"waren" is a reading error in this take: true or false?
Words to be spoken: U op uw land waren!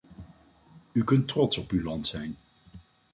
true